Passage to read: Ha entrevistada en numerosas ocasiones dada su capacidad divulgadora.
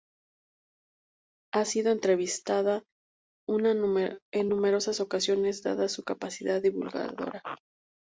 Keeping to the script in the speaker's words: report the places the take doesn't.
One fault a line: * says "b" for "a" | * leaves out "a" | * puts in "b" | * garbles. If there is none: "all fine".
* puts in "sido"